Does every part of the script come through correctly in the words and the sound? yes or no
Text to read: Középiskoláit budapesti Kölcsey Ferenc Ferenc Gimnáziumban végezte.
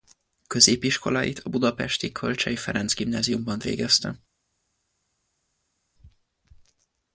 no